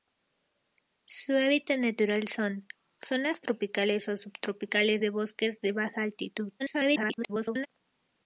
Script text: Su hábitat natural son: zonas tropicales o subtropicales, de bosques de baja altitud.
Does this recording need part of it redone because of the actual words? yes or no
yes